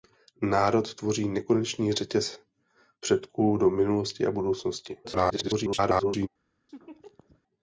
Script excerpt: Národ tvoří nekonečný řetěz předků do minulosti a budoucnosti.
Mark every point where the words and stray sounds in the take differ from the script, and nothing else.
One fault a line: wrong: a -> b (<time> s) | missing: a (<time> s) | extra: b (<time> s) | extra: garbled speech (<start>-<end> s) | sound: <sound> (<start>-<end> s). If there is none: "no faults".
extra: garbled speech (5.0-6.3 s)
sound: laugh (6.7-7.4 s)